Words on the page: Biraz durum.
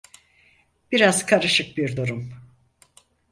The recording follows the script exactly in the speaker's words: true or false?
false